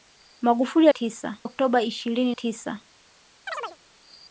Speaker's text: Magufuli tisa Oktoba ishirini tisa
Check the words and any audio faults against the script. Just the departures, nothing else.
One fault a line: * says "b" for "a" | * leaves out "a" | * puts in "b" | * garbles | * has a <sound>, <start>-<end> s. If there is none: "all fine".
* has a chirp, 3.5-3.8 s